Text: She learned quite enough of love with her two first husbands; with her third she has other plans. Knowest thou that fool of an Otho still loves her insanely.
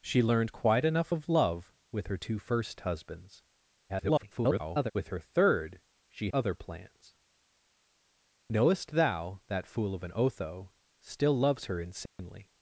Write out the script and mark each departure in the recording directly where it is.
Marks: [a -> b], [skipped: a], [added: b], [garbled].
She learned quite enough of love with her two first husbands; [garbled] with her third she [skipped: has] other plans. Knowest thou that fool of an Otho still loves her insanely.